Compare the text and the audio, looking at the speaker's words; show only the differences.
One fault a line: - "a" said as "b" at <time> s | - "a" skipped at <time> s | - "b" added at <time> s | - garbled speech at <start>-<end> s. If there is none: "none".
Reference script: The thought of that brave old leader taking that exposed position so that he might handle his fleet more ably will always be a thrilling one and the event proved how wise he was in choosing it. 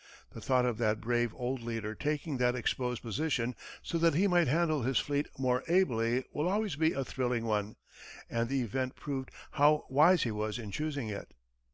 none